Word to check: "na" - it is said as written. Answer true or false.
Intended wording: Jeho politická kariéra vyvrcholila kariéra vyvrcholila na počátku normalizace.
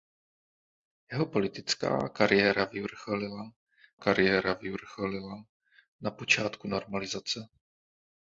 true